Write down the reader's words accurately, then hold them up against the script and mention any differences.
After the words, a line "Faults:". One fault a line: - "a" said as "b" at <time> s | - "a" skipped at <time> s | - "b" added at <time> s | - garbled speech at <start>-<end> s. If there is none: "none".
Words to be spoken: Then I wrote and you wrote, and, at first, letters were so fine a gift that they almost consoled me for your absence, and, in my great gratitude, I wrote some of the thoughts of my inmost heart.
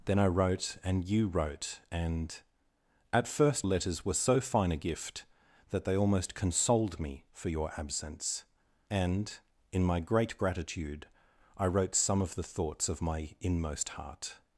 Then I wrote and you wrote, and, at first, letters were so fine a gift that they almost consoled me for your absence, and, in my great gratitude, I wrote some of the thoughts of my inmost heart.
Faults:
none